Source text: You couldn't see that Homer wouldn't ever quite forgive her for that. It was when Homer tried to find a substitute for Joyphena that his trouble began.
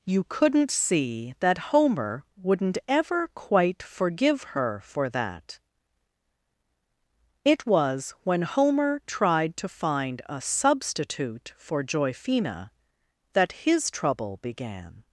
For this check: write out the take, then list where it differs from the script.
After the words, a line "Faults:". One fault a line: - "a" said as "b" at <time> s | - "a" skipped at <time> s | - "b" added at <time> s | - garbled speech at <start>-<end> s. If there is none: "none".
You couldn't see that Homer wouldn't ever quite forgive her for that. It was when Homer tried to find a substitute for Joyphena that his trouble began.
Faults:
none